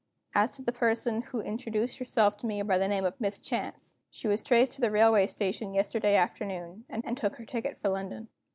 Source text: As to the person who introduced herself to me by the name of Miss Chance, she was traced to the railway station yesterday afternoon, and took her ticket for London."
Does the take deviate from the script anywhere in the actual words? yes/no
yes